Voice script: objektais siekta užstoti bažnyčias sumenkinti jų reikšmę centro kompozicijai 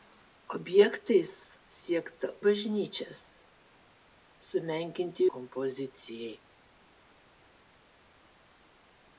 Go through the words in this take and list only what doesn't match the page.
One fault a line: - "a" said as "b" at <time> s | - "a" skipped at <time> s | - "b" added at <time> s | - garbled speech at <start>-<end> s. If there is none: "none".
- "užstoti" skipped at 2.3 s
- "jų reikšmę centro" skipped at 5.3 s